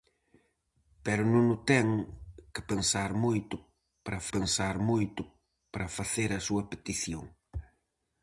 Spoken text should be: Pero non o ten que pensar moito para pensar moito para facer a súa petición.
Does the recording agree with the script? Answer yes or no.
yes